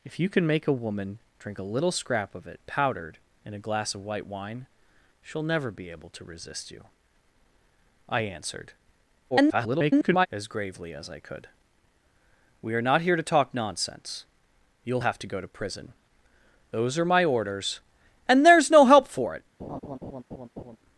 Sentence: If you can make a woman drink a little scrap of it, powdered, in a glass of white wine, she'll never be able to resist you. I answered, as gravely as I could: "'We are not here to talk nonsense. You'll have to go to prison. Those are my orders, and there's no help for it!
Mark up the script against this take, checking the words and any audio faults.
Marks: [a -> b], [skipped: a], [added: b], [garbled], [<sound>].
If you can make a woman drink a little scrap of it, powdered, in a glass of white wine, she'll never be able to resist you. I answered, [garbled] as gravely as I could: "'We are not here to talk nonsense. You'll have to go to prison. Those are my orders, and there's no help for it! [laugh]